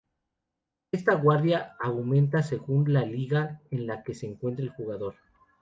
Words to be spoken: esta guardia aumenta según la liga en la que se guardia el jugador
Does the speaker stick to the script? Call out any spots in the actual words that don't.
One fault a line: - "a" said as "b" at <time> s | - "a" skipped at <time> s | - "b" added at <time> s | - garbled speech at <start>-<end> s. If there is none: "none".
- "guardia" said as "encuentre" at 4.2 s